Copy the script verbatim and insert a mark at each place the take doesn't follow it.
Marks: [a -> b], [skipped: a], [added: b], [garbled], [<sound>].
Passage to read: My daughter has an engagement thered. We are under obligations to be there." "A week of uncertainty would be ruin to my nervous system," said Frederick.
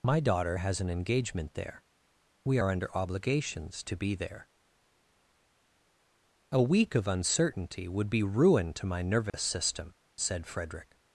My daughter has an engagement [thered. -> there] We are under obligations to be there." "A week of uncertainty would be ruin to my nervous [dropout] system," said Frederick.